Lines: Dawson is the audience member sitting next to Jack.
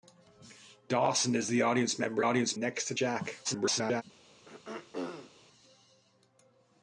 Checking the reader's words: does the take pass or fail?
fail